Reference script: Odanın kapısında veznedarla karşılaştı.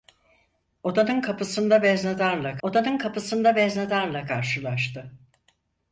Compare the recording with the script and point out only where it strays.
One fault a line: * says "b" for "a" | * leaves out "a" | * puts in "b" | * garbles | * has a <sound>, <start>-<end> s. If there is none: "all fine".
* puts in "odanın kapısında veznedarla"